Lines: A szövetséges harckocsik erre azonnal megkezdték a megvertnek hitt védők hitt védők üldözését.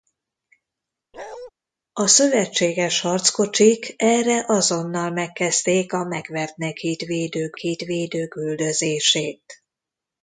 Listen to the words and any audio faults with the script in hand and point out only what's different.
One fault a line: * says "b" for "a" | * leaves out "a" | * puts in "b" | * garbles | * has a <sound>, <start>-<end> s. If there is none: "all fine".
* has a bark, 1.1-1.5 s